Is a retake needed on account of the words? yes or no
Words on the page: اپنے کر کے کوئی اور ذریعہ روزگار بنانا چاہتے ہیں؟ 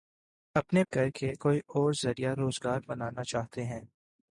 no